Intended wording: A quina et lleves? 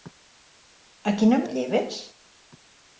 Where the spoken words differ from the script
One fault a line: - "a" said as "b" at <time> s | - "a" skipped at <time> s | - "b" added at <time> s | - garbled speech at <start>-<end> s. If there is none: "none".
none